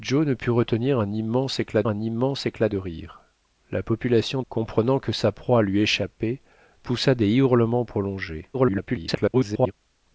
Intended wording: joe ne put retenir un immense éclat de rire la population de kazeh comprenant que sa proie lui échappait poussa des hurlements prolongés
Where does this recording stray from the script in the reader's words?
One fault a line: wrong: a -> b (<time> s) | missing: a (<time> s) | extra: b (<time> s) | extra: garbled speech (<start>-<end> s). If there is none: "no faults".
extra: un immense éclat (1.9 s)
missing: de kazeh (4.4 s)
extra: garbled speech (8.5-9.7 s)